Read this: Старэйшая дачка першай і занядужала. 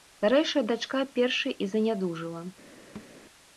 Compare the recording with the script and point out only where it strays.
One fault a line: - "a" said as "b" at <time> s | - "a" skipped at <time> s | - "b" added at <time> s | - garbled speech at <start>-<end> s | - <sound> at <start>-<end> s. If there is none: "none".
- thud at 3.0-3.1 s